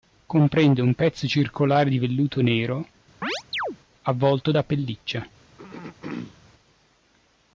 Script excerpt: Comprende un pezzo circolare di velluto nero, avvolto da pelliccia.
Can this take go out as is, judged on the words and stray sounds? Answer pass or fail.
fail